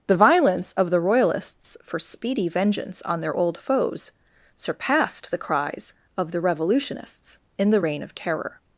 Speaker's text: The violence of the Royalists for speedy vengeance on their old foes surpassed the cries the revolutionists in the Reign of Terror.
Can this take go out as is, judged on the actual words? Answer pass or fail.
fail